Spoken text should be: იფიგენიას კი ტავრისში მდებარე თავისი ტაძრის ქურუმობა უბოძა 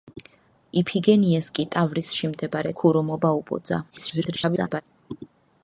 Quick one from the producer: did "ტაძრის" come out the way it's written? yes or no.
no